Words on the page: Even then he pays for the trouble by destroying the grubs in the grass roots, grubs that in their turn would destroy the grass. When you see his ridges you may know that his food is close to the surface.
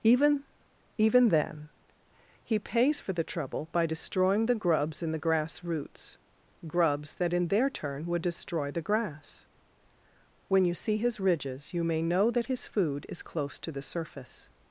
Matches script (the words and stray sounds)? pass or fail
fail